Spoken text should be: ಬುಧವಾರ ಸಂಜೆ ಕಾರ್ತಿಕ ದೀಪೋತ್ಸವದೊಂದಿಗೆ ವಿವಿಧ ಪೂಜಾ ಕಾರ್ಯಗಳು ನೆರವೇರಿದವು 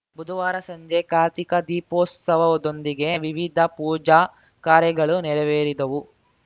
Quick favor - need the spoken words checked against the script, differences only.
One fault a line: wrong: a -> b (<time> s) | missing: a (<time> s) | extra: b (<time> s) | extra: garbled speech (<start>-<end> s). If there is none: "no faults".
no faults